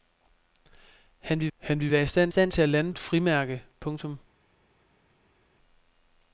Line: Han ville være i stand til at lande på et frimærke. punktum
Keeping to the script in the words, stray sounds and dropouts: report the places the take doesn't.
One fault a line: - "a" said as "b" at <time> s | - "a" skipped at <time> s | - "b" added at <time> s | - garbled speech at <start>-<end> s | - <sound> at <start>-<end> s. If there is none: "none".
- "han ville" added at 1.6 s
- "stand" added at 2.3 s
- "på" skipped at 2.9 s